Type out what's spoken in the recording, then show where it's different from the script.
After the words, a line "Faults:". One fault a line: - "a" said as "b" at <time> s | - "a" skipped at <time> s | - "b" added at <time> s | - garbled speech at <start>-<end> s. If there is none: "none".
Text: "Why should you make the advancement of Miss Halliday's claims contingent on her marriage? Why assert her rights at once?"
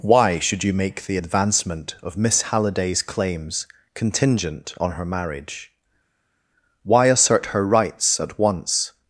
"Why should you make the advancement of Miss Halliday's claims contingent on her marriage? Why assert her rights at once?"
Faults:
none